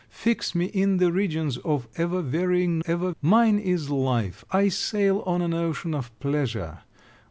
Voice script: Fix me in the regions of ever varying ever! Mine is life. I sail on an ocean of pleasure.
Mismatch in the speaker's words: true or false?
false